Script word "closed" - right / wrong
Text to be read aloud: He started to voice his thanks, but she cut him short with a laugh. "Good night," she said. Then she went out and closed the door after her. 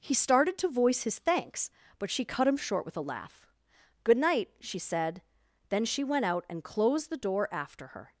right